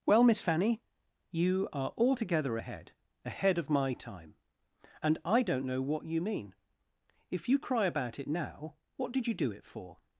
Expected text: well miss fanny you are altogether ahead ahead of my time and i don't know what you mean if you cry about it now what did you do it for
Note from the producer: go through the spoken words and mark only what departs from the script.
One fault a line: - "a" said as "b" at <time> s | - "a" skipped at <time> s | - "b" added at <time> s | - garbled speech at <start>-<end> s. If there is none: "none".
none